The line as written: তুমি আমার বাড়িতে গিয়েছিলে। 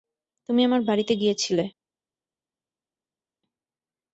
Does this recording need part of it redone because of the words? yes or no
no